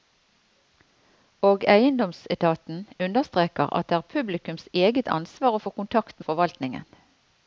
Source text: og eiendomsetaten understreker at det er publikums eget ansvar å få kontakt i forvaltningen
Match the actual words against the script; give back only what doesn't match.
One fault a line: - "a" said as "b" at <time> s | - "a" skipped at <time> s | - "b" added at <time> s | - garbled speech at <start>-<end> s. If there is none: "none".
none